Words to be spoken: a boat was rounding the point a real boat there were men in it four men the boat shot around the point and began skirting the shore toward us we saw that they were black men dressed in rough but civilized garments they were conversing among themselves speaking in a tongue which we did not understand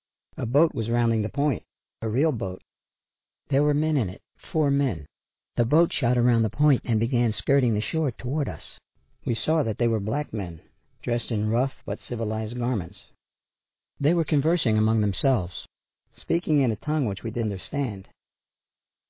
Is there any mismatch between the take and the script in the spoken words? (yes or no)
yes